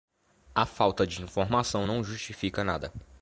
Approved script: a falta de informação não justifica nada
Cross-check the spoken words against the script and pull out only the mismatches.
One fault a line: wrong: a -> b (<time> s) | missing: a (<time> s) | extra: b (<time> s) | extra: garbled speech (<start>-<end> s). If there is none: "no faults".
no faults